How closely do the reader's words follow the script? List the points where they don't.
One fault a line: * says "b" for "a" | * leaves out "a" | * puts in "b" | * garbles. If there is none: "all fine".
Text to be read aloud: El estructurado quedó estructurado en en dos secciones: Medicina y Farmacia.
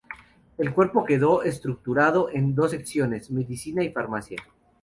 * says "cuerpo" for "estructurado"
* leaves out "en"